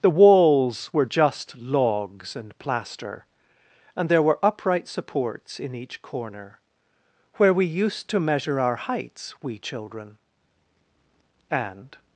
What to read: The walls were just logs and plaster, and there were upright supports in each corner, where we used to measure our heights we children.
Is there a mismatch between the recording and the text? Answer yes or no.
yes